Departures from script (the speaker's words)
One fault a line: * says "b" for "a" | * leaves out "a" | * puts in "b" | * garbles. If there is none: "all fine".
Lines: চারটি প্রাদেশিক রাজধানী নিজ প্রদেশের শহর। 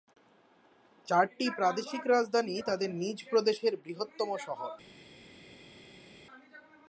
* puts in "তাদের"
* puts in "বৃহত্তম"